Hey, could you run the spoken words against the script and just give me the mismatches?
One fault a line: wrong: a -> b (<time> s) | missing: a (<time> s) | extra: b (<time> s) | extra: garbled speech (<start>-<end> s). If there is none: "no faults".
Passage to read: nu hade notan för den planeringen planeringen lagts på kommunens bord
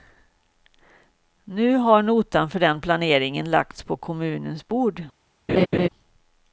wrong: hade -> har (1.8 s)
missing: planeringen (3.5 s)